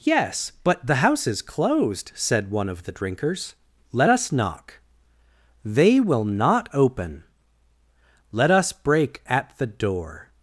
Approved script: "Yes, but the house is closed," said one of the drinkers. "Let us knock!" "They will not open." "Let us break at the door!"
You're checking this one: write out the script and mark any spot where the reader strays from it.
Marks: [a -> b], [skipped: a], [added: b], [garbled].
"Yes, but the house is closed," said one of the drinkers. "Let us knock!" "They will not open." "Let us break at the door!"